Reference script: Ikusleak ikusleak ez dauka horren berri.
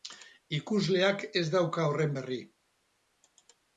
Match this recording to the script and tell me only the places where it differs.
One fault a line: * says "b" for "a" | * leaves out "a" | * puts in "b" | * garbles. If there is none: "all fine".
* leaves out "ikusleak"